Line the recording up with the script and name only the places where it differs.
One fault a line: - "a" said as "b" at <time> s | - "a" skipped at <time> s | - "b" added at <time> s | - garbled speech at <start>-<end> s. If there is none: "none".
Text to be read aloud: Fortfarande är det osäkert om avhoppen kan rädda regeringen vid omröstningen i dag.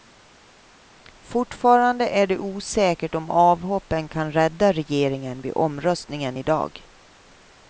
none